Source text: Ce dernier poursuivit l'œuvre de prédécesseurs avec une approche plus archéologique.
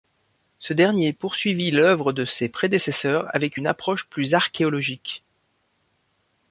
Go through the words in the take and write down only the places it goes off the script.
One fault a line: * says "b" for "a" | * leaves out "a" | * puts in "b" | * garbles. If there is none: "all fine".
* puts in "ses"